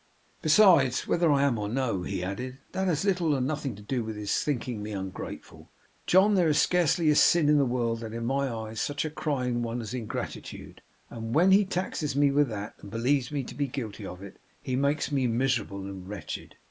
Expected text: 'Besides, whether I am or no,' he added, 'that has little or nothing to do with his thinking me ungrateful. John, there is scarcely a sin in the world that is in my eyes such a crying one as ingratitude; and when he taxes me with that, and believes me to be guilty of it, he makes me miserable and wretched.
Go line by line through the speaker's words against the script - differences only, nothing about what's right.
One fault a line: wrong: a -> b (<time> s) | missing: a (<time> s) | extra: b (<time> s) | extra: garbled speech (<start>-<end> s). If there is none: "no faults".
no faults